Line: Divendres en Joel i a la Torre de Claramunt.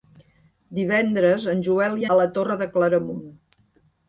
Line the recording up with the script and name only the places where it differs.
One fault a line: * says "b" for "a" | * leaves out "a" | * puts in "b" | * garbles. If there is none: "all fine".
all fine